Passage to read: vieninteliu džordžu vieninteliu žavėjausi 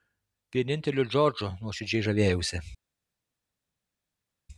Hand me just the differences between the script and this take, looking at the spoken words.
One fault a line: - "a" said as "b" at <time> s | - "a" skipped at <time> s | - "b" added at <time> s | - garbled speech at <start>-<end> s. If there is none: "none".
- "vieninteliu" said as "nuoširdžiai" at 1.6 s